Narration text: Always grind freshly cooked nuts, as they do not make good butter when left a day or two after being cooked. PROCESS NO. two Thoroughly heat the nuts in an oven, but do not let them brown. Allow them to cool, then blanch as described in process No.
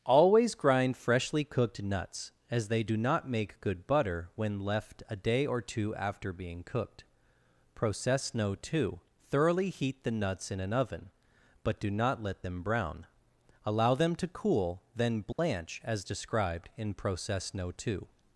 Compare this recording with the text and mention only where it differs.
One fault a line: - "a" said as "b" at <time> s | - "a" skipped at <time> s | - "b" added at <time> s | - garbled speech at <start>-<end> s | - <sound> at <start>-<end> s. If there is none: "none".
- dropout at 15.3-15.4 s
- "two" added at 17.7 s